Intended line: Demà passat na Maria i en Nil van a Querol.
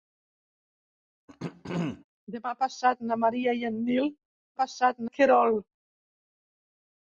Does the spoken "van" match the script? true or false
false